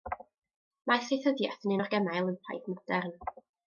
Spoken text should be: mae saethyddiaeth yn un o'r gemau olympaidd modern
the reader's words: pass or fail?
pass